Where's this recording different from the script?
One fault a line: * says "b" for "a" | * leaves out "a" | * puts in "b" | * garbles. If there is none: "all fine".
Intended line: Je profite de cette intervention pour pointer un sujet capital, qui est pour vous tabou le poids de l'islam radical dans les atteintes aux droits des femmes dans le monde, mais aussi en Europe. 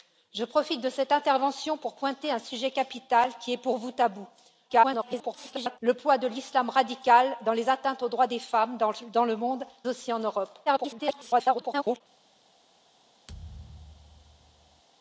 * garbles
* leaves out "mais"
* garbles